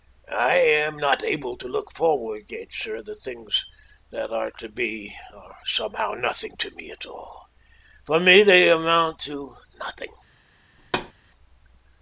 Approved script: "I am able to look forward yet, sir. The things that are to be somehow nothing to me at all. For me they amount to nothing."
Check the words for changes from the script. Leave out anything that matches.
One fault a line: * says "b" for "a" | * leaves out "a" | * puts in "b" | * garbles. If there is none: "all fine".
* puts in "not"
* puts in "are"